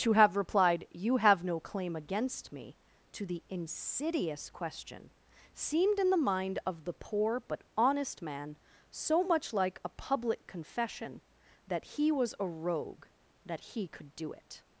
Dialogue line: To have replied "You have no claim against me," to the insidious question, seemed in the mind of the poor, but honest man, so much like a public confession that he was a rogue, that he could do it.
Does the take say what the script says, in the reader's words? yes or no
yes